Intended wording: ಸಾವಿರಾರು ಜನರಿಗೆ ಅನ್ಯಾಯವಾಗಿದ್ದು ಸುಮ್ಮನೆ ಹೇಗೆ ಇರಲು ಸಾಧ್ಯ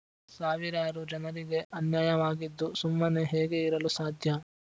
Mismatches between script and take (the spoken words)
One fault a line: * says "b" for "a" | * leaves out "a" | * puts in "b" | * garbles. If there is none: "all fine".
all fine